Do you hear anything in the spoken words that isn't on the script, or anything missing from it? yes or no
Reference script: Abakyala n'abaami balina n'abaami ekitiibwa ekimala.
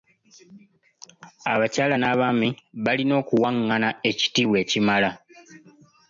yes